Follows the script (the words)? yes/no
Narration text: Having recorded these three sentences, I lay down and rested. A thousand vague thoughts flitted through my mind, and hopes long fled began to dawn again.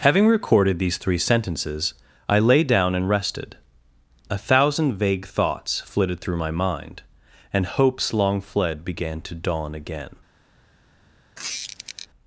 yes